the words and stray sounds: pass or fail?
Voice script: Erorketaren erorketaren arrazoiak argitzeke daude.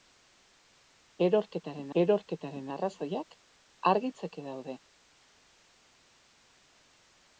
pass